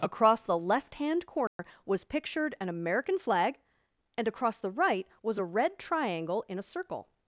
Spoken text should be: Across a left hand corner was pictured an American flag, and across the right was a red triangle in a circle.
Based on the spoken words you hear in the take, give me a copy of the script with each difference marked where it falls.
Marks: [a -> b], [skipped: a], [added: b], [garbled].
Across [a -> the] left hand corner was pictured an American flag, and across the right was a red triangle in a circle.